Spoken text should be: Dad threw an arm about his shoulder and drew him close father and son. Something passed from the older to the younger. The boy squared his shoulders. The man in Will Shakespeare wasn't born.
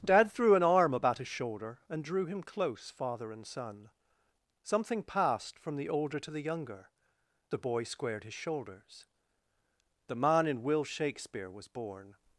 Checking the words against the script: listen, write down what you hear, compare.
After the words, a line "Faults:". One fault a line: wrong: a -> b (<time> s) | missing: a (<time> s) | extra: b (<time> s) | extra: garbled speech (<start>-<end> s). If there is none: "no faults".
Dad threw an arm about his shoulder and drew him close father and son. Something passed from the older to the younger. The boy squared his shoulders. The man in Will Shakespeare was born.
Faults:
wrong: wasn't -> was (11.5 s)